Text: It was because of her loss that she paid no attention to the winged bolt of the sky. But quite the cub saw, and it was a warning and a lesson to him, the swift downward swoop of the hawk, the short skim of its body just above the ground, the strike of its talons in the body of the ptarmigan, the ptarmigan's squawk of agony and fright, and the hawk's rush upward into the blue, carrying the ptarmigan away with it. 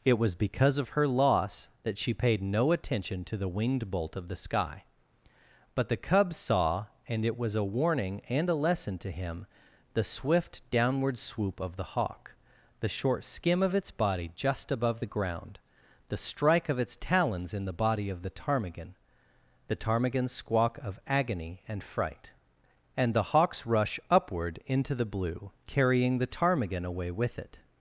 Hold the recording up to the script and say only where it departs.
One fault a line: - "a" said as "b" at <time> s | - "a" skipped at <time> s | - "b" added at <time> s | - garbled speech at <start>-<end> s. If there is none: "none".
- "quite" skipped at 5.9 s